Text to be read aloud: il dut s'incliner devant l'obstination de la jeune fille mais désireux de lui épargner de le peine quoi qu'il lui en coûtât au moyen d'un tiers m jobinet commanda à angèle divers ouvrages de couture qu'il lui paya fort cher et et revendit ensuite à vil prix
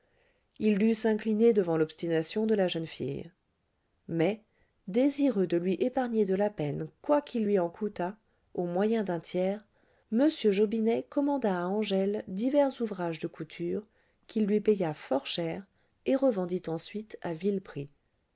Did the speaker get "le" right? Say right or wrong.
wrong